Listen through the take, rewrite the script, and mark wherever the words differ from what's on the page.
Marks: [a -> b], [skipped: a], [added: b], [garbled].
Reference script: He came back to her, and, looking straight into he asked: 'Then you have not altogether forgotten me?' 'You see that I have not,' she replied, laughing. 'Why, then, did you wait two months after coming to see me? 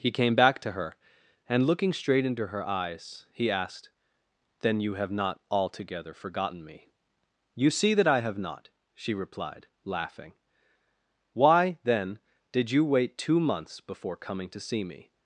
He came back to her, and, looking straight into [added: her eyes] he asked: 'Then you have not altogether forgotten me?' 'You see that I have not,' she replied, laughing. 'Why, then, did you wait two months [after -> before] coming to see me?